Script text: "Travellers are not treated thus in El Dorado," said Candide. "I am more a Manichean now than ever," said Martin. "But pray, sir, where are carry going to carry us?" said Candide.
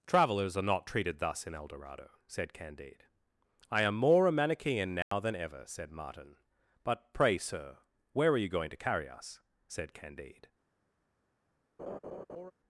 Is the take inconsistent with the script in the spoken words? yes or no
yes